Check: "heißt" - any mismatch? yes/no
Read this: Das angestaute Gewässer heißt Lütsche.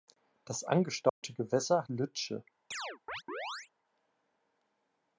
yes